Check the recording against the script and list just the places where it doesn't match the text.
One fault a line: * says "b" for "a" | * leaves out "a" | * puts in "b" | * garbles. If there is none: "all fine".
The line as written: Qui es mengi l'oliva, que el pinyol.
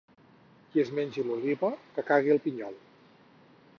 * puts in "cagui"